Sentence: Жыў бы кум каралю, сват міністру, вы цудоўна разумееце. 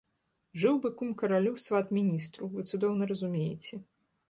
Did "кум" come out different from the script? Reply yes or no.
no